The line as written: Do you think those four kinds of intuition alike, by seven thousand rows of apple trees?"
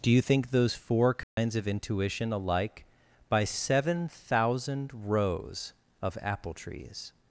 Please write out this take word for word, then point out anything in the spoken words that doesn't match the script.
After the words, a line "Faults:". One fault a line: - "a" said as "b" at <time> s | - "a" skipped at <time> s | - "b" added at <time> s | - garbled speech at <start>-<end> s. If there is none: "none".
Do you think those four kinds of intuition alike, by seven thousand rows of apple trees?"
Faults:
none